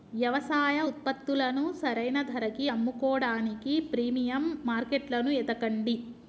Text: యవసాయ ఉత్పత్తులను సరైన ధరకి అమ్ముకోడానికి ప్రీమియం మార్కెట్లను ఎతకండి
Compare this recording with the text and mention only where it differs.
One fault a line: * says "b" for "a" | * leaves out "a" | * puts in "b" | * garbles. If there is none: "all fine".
all fine